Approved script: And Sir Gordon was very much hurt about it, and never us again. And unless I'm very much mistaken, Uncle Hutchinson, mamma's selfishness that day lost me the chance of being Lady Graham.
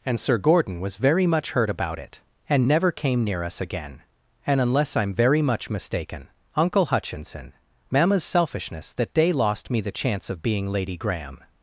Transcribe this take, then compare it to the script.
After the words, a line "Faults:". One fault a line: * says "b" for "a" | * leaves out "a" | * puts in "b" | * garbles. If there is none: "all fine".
And Sir Gordon was very much hurt about it, and never came near us again. And unless I'm very much mistaken, Uncle Hutchinson, mamma's selfishness that day lost me the chance of being Lady Graham.
Faults:
* puts in "came near"